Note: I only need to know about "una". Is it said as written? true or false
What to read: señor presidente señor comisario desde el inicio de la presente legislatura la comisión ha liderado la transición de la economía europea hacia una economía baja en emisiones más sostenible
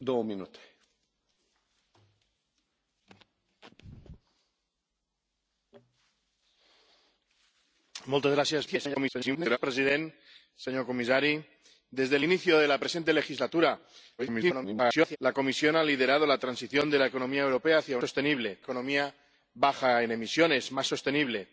false